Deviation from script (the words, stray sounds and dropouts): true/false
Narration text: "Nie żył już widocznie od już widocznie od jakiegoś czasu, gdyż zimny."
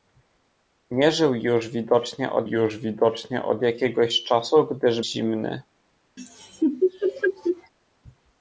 true